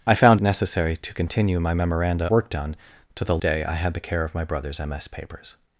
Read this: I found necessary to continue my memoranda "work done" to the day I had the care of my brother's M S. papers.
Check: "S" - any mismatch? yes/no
no